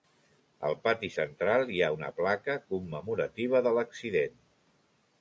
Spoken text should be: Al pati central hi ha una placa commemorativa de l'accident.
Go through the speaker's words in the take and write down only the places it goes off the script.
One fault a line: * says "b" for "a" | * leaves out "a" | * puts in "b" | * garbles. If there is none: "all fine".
all fine